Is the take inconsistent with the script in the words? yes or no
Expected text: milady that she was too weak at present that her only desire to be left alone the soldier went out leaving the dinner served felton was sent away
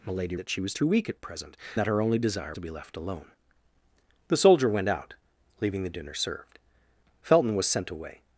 no